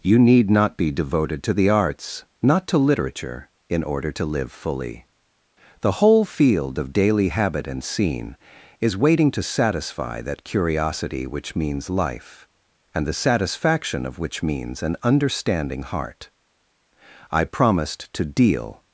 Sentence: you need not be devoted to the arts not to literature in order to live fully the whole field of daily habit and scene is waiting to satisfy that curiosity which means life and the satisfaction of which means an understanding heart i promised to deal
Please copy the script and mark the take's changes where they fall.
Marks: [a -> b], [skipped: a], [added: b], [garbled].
you need not be devoted to the arts not to literature in order to live fully the whole field of daily habit and scene is waiting to satisfy that curiosity which means life and the satisfaction of which means an understanding heart i promised to deal